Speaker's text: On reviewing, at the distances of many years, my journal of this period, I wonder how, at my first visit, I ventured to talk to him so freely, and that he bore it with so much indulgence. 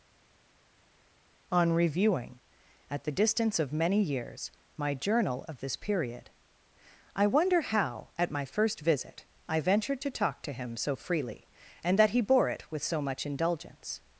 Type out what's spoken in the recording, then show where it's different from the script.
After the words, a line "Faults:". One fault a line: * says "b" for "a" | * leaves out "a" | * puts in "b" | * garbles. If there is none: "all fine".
On reviewing, at the distance of many years, my journal of this period, I wonder how, at my first visit, I ventured to talk to him so freely, and that he bore it with so much indulgence.
Faults:
* says "distance" for "distances"